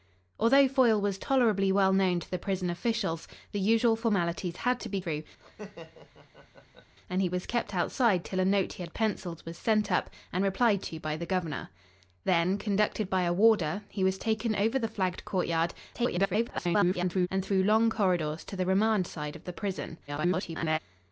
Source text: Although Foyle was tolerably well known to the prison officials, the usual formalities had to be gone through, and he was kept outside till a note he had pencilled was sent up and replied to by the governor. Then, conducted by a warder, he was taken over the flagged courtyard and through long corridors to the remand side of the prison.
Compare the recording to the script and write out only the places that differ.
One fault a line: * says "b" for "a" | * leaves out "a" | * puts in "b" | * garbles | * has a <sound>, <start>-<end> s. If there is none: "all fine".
* leaves out "gone"
* has a laugh, 5.4-6.9 s
* garbles
* garbles